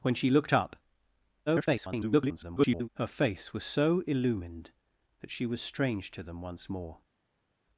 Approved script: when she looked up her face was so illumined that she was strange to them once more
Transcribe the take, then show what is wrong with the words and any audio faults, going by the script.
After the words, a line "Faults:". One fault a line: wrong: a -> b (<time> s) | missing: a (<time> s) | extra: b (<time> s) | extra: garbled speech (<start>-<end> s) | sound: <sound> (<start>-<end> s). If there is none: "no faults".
when she looked up [garbled] her face was so illumined that she was strange to them once more
Faults:
extra: garbled speech (1.5-2.9 s)